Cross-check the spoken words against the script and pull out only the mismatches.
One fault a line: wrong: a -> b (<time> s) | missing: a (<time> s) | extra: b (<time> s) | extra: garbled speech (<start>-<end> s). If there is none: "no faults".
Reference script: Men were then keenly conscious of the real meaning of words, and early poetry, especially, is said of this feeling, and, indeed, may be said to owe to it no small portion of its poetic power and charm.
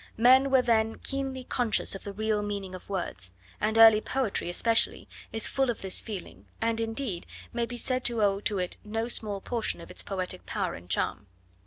wrong: said -> full (5.5 s)